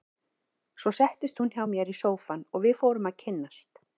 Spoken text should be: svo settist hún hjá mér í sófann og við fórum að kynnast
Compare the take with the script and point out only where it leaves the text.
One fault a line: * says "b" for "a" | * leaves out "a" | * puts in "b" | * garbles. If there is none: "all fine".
all fine